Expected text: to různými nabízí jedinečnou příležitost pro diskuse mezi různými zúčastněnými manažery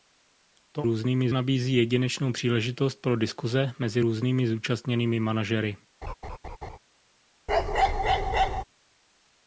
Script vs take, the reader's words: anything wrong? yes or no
no